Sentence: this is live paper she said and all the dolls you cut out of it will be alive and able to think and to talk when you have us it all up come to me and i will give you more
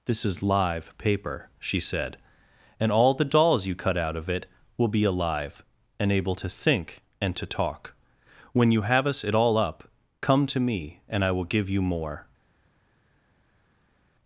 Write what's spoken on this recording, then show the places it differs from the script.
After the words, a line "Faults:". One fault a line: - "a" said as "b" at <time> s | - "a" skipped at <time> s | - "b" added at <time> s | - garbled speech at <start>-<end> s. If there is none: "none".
this is live paper she said and all the dolls you cut out of it will be alive and able to think and to talk when you have us it all up come to me and i will give you more
Faults:
none